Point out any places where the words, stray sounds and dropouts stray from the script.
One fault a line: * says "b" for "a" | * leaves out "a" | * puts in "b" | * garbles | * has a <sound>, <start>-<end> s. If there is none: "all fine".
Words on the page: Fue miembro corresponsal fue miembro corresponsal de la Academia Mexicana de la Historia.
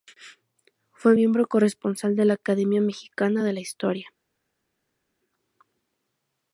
* leaves out "fue miembro corresponsal"